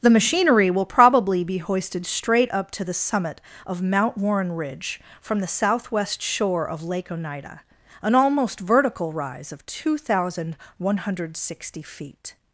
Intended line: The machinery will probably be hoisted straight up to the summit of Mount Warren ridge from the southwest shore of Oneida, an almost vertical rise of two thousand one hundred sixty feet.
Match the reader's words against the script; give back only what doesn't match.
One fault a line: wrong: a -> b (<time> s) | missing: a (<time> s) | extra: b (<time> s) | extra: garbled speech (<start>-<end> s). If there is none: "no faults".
extra: Lake (6.8 s)